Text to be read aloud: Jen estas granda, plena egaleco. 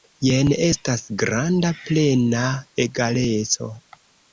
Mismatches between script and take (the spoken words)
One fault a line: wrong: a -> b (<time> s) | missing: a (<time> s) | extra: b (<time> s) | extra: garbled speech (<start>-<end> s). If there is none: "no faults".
no faults